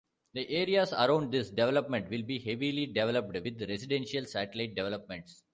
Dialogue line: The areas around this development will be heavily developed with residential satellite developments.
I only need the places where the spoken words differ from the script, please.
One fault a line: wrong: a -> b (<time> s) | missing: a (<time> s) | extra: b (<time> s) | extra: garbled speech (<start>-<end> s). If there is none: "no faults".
no faults